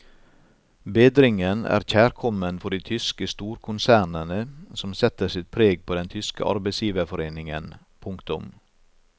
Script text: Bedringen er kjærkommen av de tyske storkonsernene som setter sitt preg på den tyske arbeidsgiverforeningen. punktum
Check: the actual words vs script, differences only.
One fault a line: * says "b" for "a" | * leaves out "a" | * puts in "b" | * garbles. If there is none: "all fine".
* says "for" for "av"